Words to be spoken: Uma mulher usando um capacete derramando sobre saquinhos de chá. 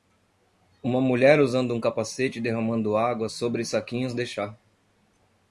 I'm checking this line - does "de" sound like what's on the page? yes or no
yes